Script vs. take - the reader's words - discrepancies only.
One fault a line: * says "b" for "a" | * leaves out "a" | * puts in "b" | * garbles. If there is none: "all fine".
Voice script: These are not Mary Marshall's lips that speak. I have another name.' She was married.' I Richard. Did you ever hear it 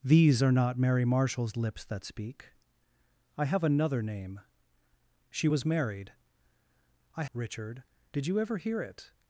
all fine